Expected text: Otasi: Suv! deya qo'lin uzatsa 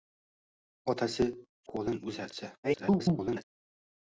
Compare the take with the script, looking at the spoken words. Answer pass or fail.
fail